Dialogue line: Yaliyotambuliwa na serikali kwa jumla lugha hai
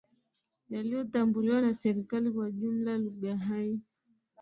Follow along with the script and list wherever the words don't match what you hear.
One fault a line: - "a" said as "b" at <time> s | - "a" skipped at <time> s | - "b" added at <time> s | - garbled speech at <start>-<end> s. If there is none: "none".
none